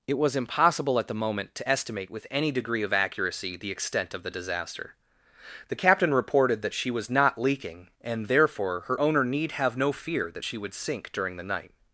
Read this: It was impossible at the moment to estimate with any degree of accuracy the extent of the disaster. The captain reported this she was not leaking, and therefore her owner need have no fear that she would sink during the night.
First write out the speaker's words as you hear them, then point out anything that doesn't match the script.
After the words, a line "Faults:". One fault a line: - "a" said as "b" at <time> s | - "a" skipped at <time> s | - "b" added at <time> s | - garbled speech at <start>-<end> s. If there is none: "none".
It was impossible at the moment to estimate with any degree of accuracy the extent of the disaster. The captain reported that she was not leaking, and therefore her owner need have no fear that she would sink during the night.
Faults:
- "this" said as "that" at 6.6 s